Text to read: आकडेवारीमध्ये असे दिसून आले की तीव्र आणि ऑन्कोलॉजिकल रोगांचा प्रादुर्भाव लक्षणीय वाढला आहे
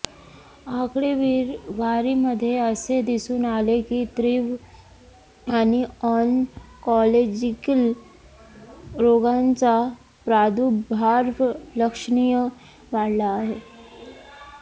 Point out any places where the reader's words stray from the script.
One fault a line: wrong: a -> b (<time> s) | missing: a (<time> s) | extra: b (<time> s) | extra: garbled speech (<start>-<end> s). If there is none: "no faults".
no faults